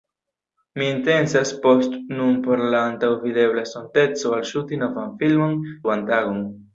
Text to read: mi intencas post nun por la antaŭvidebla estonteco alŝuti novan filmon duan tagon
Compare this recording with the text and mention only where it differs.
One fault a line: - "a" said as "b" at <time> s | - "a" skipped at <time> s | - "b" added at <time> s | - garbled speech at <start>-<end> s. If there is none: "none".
none